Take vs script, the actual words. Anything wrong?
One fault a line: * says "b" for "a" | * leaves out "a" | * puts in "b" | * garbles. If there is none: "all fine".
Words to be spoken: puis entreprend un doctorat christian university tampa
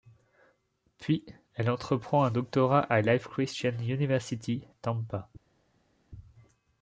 * puts in "elle"
* puts in "à life"